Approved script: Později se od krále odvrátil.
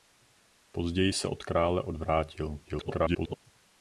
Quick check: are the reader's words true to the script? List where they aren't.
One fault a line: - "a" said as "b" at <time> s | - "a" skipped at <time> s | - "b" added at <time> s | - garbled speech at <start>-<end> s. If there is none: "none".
- garbled speech at 2.6-3.4 s